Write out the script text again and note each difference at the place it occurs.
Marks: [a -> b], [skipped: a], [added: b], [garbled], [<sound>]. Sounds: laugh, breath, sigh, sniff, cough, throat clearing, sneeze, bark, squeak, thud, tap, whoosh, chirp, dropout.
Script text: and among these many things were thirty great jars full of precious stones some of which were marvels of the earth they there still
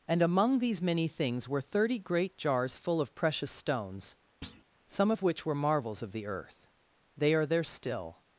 and among these many things were thirty great jars full of precious stones [thud] some of which were marvels of the earth they [added: are] there still